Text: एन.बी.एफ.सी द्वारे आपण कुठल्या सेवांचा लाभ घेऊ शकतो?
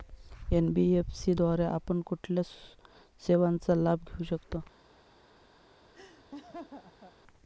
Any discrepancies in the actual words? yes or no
no